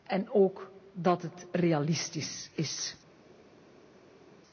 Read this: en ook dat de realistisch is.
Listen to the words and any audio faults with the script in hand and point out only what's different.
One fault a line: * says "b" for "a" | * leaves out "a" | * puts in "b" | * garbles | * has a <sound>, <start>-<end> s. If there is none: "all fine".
* says "het" for "de"